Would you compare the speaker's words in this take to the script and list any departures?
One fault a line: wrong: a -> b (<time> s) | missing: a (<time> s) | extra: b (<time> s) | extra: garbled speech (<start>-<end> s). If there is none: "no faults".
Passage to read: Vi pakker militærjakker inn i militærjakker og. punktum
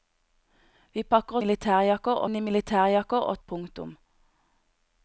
no faults